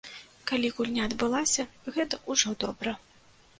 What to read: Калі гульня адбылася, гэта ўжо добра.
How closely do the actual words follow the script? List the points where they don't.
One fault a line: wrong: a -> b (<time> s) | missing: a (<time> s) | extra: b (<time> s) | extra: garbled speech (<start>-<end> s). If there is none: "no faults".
no faults